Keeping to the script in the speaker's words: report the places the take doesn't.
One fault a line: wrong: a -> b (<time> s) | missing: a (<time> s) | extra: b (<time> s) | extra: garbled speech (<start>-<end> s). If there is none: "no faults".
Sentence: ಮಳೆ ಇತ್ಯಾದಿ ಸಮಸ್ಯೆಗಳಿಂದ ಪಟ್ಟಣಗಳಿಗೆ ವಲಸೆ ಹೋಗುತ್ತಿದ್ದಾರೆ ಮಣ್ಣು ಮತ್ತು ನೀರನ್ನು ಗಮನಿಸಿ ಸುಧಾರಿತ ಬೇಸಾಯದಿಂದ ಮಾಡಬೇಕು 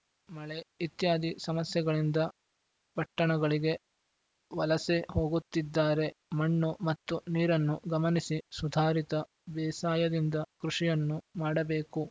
extra: ಕೃಷಿಯನ್ನು (10.6 s)